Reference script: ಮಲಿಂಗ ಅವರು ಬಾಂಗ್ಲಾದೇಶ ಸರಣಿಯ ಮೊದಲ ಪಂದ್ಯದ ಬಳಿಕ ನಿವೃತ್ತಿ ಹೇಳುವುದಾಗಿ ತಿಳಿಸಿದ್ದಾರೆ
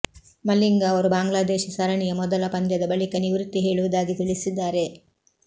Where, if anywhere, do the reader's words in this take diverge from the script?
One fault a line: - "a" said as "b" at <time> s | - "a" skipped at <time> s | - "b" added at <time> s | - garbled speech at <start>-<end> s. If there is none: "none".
none